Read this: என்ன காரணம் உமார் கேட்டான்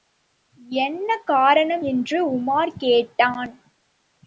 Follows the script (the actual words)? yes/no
no